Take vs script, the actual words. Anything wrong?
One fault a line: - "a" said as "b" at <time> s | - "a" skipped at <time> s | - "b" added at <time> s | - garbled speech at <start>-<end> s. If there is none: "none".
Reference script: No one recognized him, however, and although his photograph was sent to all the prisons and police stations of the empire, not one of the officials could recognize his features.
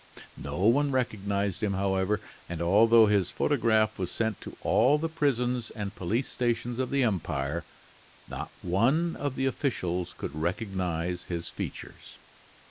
none